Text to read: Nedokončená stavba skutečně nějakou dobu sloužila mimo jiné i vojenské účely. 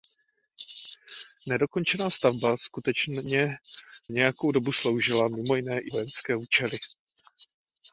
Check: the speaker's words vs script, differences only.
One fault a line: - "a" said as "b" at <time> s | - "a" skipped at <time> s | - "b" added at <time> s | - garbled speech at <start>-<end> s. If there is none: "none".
none